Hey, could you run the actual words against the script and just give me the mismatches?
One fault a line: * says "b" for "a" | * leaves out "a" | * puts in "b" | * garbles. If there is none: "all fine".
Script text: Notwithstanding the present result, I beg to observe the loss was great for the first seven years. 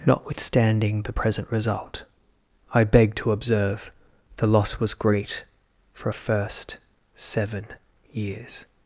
* says "a" for "the"